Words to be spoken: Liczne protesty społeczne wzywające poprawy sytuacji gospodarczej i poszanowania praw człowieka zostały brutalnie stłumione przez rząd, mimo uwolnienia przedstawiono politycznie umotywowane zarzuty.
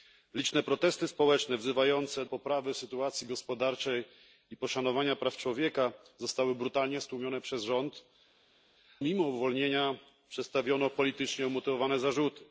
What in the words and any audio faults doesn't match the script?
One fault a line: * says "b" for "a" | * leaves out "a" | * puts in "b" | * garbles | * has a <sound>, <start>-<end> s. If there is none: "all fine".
all fine